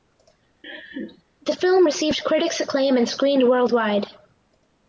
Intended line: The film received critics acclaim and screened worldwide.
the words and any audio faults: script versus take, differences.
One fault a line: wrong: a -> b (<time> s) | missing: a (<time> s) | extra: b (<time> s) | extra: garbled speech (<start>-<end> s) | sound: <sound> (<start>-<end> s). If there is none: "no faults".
sound: laugh (0.6-1.2 s)